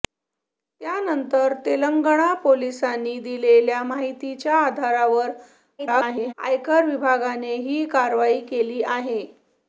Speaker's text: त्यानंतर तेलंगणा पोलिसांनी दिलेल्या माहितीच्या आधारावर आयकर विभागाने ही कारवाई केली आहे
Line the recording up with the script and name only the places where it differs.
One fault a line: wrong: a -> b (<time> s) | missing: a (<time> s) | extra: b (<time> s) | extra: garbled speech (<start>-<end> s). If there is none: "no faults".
extra: garbled speech (5.8-6.3 s)